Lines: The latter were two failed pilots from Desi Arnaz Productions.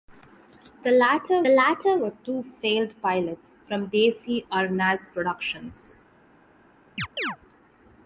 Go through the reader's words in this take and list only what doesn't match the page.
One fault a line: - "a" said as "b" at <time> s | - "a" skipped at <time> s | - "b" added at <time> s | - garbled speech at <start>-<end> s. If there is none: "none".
- "latter" added at 1.5 s